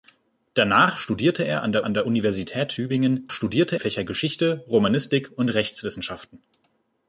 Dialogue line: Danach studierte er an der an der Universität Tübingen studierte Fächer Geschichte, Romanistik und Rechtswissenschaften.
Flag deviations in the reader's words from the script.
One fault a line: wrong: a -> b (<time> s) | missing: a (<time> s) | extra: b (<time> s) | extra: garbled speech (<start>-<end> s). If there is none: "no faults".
no faults